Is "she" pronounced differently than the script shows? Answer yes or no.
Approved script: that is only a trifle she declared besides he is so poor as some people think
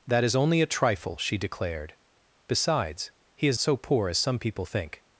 no